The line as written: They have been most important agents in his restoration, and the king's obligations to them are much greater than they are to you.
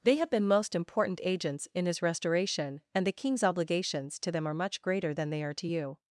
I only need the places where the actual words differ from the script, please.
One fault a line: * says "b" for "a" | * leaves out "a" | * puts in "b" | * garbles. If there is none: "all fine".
all fine